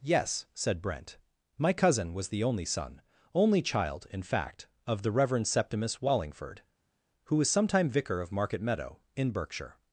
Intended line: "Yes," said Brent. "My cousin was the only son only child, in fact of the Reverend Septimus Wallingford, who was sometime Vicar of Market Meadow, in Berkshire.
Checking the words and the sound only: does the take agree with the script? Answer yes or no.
yes